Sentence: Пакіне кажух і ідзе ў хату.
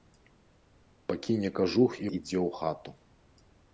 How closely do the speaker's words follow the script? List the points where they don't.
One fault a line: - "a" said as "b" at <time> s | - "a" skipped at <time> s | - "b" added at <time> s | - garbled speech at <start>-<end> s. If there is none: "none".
none